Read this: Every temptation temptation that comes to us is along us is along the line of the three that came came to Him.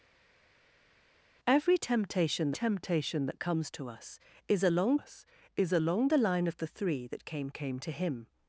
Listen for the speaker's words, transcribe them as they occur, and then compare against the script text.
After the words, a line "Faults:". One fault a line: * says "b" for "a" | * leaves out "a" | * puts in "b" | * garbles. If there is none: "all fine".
Every temptation temptation that comes to us is along us is along the line of the three that came came to Him.
Faults:
all fine